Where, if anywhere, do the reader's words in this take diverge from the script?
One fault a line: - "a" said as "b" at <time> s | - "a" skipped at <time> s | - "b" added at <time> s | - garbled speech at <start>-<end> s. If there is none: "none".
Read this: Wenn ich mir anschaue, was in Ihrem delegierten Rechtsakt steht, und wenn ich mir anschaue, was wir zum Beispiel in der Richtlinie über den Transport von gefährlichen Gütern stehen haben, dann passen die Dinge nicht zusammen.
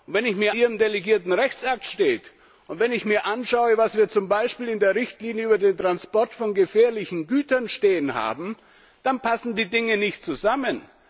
- "anschaue was in" skipped at 0.6 s